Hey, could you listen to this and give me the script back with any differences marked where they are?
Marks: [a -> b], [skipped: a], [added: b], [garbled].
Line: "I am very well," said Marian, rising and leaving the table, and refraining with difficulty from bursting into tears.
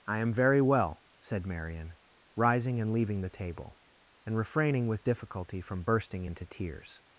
"I am very well," said Marian, rising and leaving the table, and refraining with difficulty from bursting into tears.